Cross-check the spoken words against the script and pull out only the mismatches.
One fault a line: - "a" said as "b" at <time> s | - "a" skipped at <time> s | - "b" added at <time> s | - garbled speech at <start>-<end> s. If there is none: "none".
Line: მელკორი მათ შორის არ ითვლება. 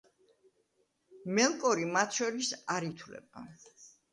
none